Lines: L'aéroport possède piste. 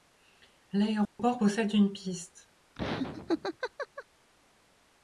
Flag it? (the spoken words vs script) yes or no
yes